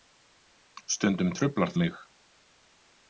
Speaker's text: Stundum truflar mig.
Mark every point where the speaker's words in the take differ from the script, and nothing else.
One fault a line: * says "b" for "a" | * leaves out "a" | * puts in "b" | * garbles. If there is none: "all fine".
all fine